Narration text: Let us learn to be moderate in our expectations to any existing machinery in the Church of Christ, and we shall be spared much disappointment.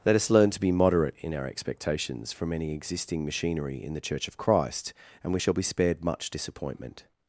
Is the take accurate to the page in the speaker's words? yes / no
no